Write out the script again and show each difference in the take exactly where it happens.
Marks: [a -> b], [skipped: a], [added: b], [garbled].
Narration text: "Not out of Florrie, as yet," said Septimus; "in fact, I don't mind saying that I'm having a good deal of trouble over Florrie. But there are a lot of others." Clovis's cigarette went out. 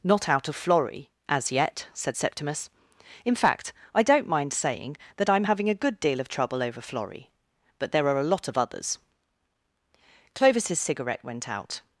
"Not out of Florrie, as yet," said Septimus; "in fact, I don't mind saying that I'm having a good deal of trouble over Florrie. But there are a lot of others." Clovis's cigarette went out.